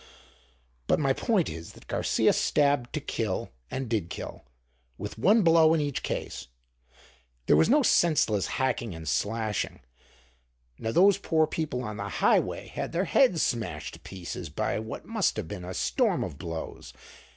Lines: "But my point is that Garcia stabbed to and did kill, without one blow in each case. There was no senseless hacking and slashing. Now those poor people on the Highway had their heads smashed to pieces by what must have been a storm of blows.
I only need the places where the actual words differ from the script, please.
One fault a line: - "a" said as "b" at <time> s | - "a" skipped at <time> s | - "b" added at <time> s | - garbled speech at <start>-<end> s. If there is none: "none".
- "kill" added at 3.0 s
- "without" said as "with" at 5.0 s